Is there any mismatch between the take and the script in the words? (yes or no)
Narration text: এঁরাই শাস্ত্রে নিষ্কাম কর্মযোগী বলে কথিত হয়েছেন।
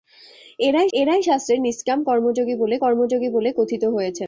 yes